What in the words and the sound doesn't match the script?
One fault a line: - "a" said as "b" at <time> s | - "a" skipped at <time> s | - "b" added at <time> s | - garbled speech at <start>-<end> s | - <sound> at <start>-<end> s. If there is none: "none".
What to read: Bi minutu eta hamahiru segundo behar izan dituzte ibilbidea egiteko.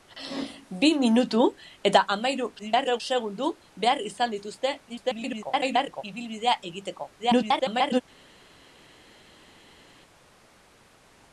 - garbled speech at 2.6-3.0 s
- garbled speech at 4.9-6.0 s
- garbled speech at 7.2-8.0 s